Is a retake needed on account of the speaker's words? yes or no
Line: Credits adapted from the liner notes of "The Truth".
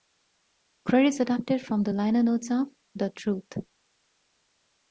no